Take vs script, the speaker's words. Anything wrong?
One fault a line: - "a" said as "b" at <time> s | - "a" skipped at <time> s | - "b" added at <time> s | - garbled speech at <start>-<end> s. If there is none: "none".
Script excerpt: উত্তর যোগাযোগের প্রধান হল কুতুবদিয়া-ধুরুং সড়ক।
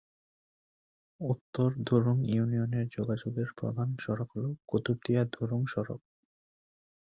- "ধুরুং ইউনিয়নে" added at 1.9 s
- "সড়ক" added at 4.0 s